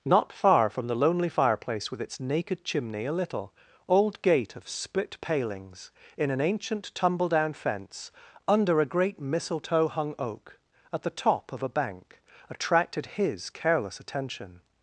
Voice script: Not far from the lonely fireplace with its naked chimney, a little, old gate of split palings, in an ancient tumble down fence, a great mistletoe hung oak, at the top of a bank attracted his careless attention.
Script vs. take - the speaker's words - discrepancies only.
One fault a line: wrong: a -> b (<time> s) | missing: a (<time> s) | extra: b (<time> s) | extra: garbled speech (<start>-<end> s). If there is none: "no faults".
extra: under (8.5 s)